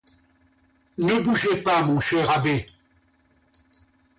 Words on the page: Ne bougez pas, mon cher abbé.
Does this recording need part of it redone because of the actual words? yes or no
no